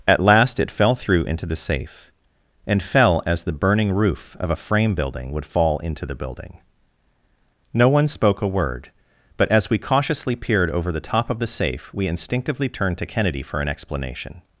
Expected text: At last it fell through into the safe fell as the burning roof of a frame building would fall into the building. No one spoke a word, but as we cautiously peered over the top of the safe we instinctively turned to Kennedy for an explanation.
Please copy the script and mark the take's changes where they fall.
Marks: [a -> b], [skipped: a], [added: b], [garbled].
At last it fell through into the safe [added: and] fell as the burning roof of a frame building would fall into the building. No one spoke a word, but as we cautiously peered over the top of the safe we instinctively turned to Kennedy for an explanation.